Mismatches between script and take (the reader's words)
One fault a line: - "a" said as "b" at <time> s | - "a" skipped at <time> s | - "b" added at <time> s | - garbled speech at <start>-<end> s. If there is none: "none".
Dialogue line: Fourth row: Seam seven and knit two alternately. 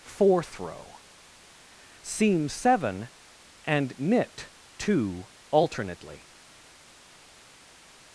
none